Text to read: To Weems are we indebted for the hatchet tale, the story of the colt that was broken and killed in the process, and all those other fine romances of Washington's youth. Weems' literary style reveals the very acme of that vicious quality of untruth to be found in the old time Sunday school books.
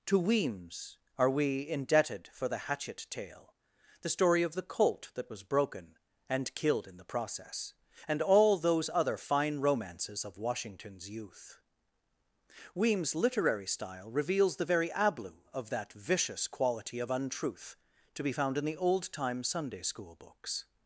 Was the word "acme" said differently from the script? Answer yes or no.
yes